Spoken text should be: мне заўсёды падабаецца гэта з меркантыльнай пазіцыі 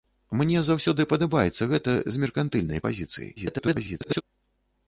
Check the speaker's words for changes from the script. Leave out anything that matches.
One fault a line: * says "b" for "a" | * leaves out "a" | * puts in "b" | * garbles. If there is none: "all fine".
* garbles